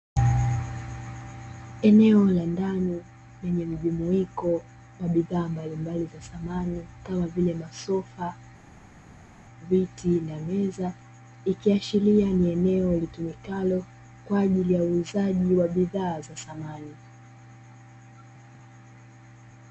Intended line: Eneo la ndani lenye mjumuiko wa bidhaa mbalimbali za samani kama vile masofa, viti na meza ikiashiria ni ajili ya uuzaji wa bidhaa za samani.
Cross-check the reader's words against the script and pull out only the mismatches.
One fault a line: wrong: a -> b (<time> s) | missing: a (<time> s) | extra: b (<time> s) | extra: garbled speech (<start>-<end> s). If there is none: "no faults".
extra: eneo litumikalo kwa (12.5 s)